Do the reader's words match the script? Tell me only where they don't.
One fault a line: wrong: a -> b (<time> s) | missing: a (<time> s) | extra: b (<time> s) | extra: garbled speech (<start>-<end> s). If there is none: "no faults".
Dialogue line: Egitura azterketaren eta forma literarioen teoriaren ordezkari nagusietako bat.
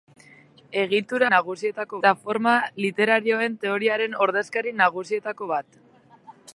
wrong: azterketaren -> nagusietako (1.3 s)